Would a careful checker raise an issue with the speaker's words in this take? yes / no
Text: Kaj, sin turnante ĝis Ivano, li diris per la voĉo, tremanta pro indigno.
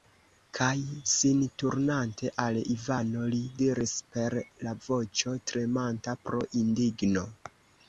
yes